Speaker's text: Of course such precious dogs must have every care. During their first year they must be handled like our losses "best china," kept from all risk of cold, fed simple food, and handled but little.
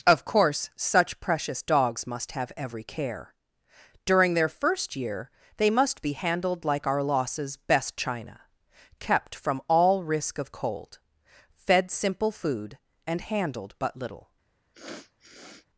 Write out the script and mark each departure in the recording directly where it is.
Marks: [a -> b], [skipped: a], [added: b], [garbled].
Of course such precious dogs must have every care. During their first year they must be handled like our losses "best china," kept from all risk of cold, fed simple food, and handled but little.